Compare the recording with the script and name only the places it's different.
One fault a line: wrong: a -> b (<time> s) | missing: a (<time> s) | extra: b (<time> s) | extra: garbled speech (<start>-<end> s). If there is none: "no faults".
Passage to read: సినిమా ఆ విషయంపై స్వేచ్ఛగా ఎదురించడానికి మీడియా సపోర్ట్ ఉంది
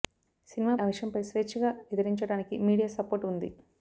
no faults